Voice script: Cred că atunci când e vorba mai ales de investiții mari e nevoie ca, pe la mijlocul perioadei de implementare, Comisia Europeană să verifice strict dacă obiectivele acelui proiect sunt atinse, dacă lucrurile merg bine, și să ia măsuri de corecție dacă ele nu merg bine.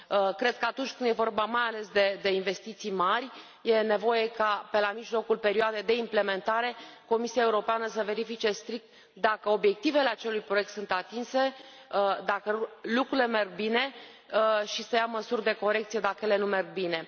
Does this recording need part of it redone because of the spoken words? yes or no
no